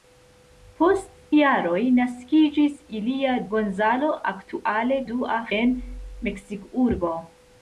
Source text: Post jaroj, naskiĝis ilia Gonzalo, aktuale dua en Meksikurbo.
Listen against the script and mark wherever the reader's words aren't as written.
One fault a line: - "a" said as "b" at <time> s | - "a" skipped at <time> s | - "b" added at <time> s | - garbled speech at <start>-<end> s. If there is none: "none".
none